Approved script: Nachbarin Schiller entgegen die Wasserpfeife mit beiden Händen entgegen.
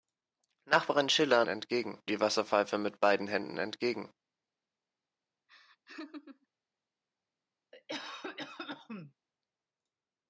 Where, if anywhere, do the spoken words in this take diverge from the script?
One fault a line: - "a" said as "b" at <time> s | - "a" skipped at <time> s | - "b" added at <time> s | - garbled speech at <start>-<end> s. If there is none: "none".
none